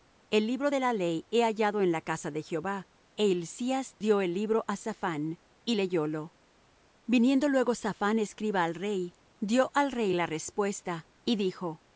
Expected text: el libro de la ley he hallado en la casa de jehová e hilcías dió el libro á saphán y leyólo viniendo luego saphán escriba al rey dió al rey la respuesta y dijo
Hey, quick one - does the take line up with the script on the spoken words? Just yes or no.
yes